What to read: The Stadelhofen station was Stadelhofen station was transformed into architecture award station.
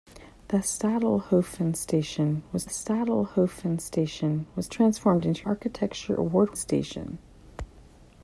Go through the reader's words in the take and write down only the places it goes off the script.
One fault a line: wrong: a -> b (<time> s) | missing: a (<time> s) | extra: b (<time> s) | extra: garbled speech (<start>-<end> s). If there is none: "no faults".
no faults